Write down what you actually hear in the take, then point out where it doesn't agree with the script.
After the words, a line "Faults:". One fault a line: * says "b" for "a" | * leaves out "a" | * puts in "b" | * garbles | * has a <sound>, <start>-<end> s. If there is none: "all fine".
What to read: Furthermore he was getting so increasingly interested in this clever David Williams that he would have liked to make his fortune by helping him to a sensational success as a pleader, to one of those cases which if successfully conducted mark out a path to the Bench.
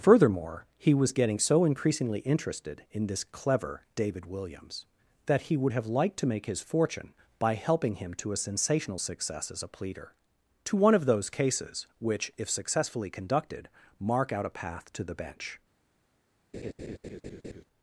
Furthermore he was getting so increasingly interested in this clever David Williams that he would have liked to make his fortune by helping him to a sensational success as a pleader, to one of those cases which if successfully conducted mark out a path to the Bench.
Faults:
* has a laugh, 16.5-17.6 s